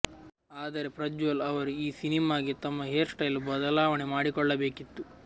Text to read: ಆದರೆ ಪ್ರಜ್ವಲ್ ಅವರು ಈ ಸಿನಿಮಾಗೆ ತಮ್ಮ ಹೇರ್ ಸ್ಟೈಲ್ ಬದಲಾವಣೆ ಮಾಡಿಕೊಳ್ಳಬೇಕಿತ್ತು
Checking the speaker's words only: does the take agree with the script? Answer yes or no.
yes